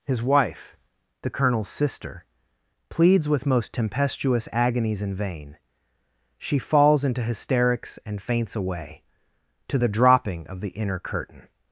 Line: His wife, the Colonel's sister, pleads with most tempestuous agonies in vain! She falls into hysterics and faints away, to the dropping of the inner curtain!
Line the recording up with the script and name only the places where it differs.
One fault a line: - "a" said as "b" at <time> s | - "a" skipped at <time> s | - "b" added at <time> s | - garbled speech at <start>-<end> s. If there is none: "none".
none